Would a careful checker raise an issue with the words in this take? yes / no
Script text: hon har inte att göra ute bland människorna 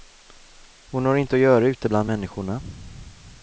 no